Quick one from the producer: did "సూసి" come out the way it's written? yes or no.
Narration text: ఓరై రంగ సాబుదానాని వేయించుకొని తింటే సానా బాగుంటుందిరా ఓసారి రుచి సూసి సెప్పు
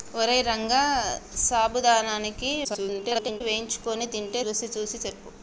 yes